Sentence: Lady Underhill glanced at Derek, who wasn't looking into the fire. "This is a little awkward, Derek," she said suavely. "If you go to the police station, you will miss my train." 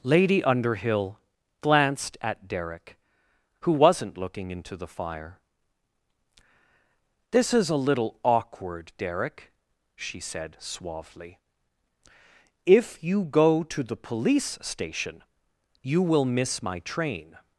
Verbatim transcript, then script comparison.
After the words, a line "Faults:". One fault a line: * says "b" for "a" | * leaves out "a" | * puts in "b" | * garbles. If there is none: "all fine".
Lady Underhill glanced at Derek, who wasn't looking into the fire. "This is a little awkward, Derek," she said suavely. "If you go to the police station, you will miss my train."
Faults:
all fine